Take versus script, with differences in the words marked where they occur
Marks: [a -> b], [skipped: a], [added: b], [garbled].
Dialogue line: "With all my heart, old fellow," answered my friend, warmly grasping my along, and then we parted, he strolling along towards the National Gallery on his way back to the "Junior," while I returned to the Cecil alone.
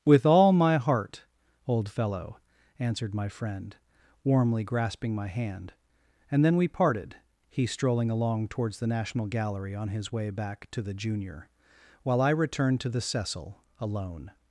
"With all my heart, old fellow," answered my friend, warmly grasping my [along, -> hand] and then we parted, he strolling along towards the National Gallery on his way back to the "Junior," while I returned to the Cecil alone.